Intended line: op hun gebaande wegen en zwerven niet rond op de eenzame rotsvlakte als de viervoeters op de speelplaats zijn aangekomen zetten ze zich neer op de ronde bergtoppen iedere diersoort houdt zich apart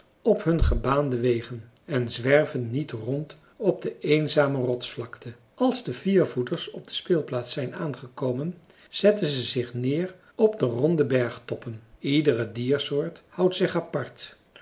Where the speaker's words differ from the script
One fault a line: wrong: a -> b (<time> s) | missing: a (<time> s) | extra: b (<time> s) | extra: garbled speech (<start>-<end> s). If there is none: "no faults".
no faults